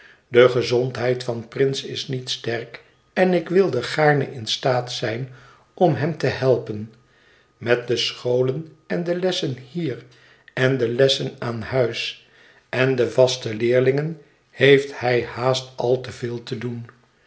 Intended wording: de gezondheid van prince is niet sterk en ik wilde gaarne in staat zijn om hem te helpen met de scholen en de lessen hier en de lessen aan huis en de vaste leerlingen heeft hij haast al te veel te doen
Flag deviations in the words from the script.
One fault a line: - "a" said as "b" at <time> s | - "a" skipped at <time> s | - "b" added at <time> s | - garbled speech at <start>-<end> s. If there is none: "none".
none